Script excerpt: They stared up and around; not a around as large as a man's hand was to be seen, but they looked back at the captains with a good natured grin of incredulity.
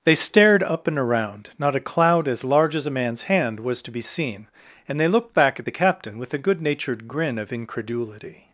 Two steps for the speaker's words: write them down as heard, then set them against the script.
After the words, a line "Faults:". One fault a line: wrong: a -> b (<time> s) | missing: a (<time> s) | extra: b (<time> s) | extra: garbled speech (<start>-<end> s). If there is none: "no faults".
They stared up and around; not a cloud as large as a man's hand was to be seen, and they looked back at the captain with a good natured grin of incredulity.
Faults:
wrong: around -> cloud (1.9 s)
wrong: but -> and (4.9 s)
wrong: captains -> captain (5.8 s)